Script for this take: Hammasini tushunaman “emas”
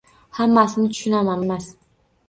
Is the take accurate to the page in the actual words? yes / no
yes